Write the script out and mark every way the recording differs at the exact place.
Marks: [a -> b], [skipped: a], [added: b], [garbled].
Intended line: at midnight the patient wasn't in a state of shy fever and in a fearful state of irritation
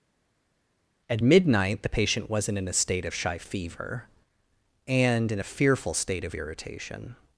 at midnight the patient wasn't in a state of shy fever and in a fearful state of irritation